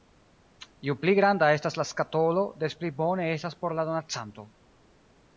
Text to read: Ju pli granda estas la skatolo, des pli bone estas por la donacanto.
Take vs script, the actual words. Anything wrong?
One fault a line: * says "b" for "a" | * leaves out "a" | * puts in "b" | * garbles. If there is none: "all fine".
all fine